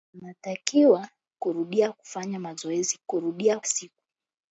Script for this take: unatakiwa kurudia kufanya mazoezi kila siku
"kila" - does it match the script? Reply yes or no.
no